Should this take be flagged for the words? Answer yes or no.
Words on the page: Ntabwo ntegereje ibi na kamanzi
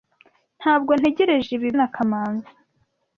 no